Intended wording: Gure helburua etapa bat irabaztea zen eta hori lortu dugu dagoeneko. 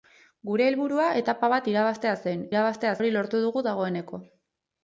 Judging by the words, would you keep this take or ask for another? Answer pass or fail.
fail